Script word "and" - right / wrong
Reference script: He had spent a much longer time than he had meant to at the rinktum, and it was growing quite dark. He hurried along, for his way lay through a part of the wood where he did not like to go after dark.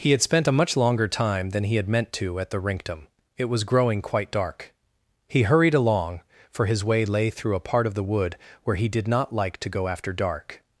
wrong